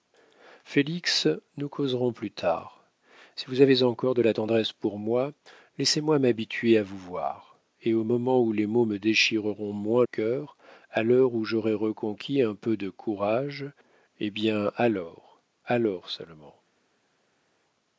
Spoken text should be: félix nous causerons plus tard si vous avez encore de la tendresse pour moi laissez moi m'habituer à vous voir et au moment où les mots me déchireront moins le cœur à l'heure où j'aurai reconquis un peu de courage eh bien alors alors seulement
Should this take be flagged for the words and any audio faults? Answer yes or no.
yes